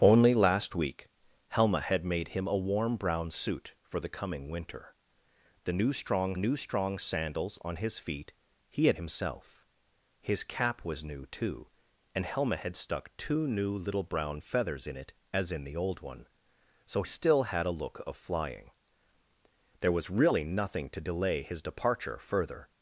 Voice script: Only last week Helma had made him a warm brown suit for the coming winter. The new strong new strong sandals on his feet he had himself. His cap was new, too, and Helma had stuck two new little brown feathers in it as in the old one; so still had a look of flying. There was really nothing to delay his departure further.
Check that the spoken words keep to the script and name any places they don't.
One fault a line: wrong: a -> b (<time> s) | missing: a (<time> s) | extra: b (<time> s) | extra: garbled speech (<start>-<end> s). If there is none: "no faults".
no faults